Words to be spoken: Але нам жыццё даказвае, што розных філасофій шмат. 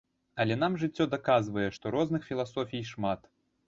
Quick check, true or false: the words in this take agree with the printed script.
true